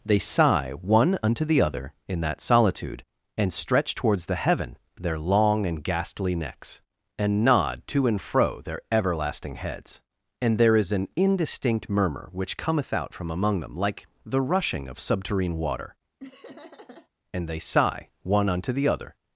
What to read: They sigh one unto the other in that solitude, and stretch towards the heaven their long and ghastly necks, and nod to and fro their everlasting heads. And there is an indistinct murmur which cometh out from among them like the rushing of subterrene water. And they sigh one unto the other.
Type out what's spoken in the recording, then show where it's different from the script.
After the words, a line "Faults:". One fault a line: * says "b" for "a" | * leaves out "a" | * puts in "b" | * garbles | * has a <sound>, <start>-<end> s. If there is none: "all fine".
They sigh one unto the other in that solitude, and stretch towards the heaven their long and ghastly necks, and nod to and fro their everlasting heads. And there is an indistinct murmur which cometh out from among them like the rushing of subterrene water. And they sigh one unto the other.
Faults:
* has a laugh, 16.2-17.1 s